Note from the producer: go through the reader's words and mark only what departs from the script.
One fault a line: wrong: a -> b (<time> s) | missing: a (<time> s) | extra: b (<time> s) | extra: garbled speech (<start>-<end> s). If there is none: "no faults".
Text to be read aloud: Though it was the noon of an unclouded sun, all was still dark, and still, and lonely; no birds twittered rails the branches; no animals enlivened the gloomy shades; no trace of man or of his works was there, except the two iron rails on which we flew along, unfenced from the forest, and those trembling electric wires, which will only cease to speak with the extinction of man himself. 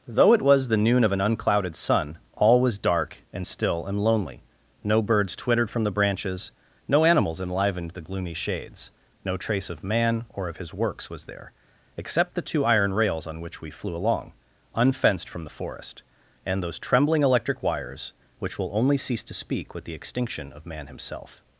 missing: still (2.8 s)
wrong: rails -> from (5.7 s)